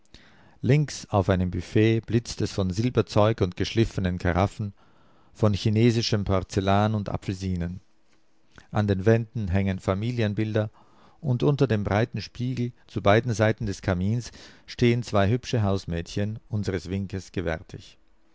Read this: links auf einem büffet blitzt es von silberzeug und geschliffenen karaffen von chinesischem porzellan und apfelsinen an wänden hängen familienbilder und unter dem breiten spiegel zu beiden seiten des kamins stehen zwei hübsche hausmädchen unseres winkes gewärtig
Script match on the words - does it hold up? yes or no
no